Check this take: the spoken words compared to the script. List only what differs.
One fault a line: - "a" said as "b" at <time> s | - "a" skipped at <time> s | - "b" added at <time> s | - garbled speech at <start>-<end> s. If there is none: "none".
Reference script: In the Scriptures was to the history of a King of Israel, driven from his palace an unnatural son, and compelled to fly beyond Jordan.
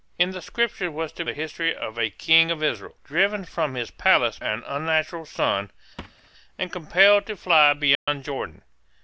none